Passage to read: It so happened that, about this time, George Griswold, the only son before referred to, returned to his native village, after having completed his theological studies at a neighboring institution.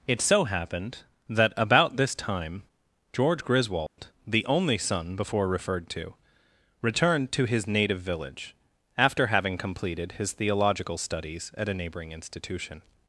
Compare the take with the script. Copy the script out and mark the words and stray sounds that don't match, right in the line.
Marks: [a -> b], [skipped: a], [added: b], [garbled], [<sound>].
It so happened that, about this time, George Griswold, [dropout] the only son before referred to, returned to his native village, after having completed his theological studies at a neighboring institution.